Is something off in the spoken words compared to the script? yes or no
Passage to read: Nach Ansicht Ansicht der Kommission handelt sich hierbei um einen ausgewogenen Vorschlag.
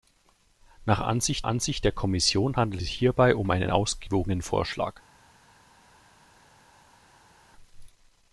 no